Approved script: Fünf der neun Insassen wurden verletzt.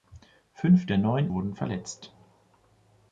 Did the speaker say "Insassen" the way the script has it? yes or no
no